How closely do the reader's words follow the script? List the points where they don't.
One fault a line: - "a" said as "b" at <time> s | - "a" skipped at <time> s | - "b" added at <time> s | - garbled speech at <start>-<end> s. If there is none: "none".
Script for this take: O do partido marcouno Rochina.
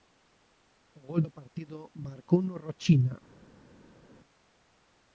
- "gol" added at 1.1 s